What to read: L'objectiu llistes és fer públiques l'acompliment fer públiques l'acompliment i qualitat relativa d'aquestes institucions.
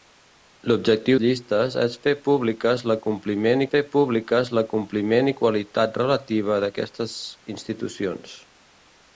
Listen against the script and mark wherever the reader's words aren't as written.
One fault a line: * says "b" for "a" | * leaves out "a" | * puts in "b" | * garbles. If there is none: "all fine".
all fine